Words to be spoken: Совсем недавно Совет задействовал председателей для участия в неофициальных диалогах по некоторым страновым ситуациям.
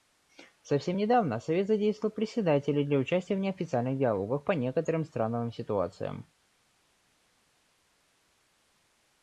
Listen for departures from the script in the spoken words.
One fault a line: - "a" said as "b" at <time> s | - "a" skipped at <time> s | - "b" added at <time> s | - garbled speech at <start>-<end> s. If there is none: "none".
none